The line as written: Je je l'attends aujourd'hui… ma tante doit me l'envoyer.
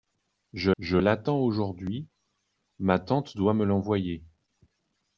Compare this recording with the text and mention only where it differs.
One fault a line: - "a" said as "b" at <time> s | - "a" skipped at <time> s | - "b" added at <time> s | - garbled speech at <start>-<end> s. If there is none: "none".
none